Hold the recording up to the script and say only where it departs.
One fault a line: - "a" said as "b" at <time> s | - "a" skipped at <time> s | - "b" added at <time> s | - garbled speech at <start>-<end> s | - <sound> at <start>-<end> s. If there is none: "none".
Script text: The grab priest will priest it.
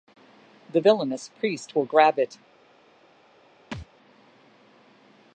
- "grab" said as "villainous" at 0.8 s
- "priest" said as "grab" at 1.9 s
- thud at 3.7-3.9 s